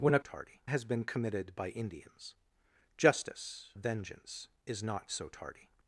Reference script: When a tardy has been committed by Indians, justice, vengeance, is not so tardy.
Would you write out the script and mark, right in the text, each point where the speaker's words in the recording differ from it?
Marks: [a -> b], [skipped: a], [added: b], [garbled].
When a tardy has been committed by Indians, justice, vengeance, is not so tardy.